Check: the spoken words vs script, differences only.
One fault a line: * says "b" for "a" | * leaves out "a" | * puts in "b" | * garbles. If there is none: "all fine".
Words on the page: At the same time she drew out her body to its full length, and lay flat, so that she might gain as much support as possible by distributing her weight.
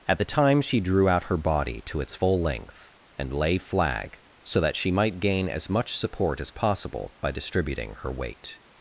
* leaves out "same"
* says "flag" for "flat"